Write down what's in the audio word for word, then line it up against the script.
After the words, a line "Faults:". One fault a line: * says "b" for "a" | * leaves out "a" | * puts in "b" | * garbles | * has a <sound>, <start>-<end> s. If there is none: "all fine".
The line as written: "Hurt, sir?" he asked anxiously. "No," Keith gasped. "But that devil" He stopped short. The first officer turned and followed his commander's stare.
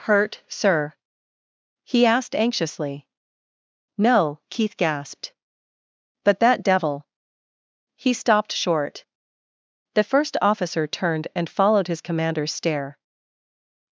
"Hurt, sir?" he asked anxiously. "No," Keith gasped. "But that devil" He stopped short. The first officer turned and followed his commander's stare.
Faults:
all fine